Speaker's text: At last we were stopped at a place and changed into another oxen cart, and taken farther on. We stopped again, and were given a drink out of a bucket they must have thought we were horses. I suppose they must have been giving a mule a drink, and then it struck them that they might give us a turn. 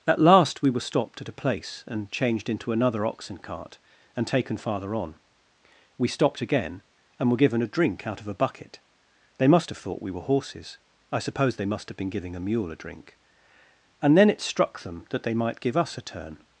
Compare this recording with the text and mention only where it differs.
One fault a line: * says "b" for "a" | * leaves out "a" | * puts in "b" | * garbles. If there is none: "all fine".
all fine